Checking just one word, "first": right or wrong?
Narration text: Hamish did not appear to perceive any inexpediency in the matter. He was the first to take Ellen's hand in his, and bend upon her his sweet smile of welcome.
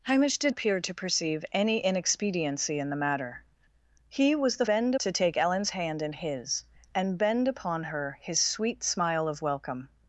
wrong